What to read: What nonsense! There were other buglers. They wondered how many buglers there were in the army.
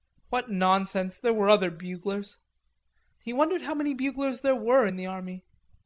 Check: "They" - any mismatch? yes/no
yes